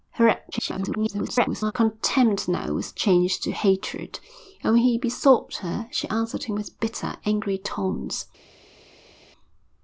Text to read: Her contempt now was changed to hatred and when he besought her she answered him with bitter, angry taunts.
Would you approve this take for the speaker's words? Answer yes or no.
no